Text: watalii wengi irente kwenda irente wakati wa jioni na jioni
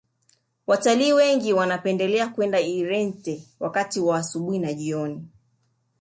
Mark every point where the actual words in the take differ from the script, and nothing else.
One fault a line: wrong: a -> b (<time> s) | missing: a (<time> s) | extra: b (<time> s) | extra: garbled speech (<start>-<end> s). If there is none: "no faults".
wrong: irente -> wanapendelea (1.5 s)
wrong: jioni -> asubuhi (4.2 s)